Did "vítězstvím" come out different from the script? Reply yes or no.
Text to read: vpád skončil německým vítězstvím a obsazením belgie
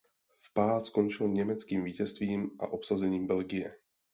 no